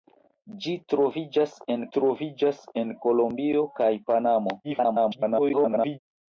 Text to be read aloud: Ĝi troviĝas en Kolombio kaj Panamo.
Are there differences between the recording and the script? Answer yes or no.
yes